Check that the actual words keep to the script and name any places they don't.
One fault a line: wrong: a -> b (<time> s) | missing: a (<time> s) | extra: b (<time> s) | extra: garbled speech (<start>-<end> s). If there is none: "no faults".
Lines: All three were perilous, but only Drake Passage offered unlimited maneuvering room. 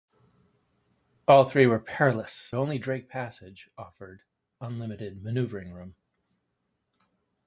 missing: but (2.5 s)